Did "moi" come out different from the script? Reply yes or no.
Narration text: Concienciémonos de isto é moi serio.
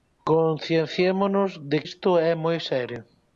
no